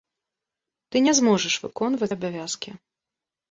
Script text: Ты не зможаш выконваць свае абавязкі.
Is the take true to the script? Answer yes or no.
no